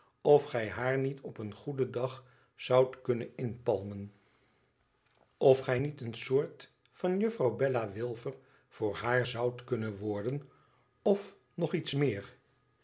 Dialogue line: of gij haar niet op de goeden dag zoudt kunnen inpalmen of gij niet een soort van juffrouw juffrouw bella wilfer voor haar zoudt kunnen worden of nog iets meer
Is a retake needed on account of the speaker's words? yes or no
yes